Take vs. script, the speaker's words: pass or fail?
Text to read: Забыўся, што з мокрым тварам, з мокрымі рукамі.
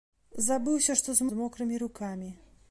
fail